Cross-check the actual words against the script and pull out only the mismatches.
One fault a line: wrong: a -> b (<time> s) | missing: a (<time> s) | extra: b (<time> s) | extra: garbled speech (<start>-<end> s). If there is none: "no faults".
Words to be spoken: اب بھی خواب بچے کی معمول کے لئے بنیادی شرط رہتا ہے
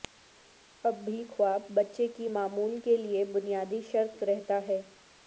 no faults